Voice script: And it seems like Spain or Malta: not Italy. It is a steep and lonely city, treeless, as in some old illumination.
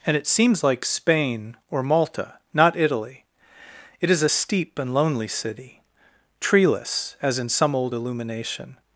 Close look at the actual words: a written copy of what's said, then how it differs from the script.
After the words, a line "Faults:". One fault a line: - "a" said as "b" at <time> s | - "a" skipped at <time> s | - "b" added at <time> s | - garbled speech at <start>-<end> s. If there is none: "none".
And it seems like Spain or Malta: not Italy. It is a steep and lonely city, treeless, as in some old illumination.
Faults:
none